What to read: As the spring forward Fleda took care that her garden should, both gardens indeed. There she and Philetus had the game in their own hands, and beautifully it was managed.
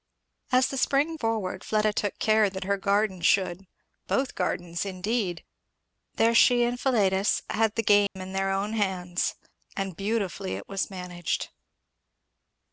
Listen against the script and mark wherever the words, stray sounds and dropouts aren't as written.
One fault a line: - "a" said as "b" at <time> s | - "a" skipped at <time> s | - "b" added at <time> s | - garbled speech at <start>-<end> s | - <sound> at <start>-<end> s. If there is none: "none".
- dropout at 8.1-8.2 s